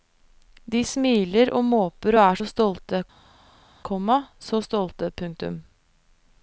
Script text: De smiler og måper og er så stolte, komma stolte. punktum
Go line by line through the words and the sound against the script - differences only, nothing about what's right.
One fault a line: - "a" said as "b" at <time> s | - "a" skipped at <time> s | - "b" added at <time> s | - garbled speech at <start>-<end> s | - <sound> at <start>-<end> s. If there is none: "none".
- "så" added at 4.5 s